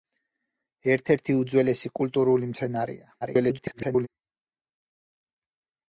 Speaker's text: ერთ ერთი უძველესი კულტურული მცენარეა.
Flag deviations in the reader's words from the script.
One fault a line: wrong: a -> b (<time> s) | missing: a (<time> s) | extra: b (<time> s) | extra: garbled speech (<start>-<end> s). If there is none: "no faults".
extra: garbled speech (3.2-4.1 s)